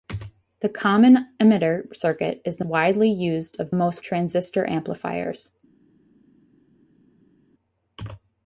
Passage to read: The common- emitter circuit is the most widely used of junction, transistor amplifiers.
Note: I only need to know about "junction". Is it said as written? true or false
false